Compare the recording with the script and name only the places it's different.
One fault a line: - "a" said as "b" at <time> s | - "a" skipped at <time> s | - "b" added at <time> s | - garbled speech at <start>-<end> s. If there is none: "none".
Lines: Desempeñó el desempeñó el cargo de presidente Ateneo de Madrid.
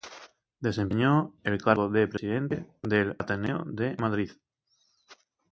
- "desempeñó el" skipped at 1.6 s
- "del" added at 2.8 s